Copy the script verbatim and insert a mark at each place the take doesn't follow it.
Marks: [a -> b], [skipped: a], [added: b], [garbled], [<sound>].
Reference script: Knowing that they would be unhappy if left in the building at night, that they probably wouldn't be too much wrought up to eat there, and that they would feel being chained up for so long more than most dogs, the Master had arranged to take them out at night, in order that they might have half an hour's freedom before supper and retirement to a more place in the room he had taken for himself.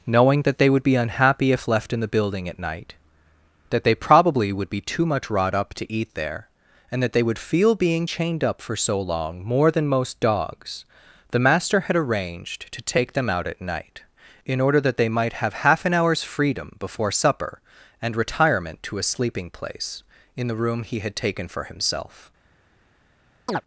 Knowing that they would be unhappy if left in the building at night, that they probably [wouldn't -> would] be too much wrought up to eat there, and that they would feel being chained up for so long more than most dogs, the Master had arranged to take them out at night, in order that they might have half an hour's freedom before supper and retirement to a [more -> sleeping] place in the room he had taken for himself. [chirp]